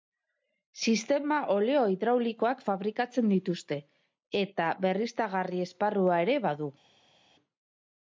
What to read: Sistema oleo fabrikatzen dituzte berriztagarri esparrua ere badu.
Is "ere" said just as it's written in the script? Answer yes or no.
yes